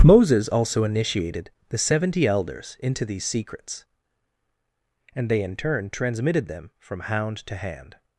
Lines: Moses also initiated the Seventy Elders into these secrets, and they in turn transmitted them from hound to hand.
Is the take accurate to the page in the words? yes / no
yes